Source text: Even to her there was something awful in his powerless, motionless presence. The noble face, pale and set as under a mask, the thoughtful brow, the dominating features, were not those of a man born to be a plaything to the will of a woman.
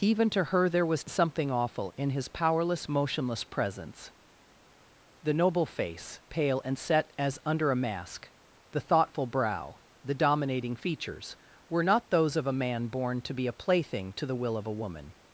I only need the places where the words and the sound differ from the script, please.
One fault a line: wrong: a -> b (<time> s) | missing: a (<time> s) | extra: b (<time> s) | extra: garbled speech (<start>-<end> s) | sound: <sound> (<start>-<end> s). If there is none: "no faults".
no faults